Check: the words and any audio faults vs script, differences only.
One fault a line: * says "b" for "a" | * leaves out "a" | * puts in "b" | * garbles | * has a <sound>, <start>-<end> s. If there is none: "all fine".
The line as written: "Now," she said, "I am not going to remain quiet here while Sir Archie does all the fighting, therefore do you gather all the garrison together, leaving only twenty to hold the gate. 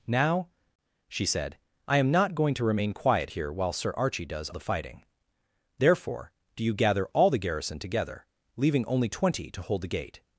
* leaves out "all"